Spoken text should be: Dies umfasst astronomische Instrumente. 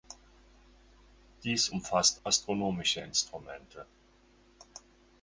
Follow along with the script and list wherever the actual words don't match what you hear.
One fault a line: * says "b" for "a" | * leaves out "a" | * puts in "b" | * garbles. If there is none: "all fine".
all fine